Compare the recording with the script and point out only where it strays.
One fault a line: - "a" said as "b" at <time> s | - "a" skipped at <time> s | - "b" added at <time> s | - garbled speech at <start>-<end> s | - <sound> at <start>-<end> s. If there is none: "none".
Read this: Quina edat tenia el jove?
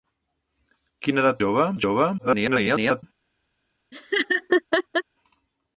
- "tenia" said as "jove" at 1.4 s
- garbled speech at 2.2-3.0 s
- laugh at 3.9-5.0 s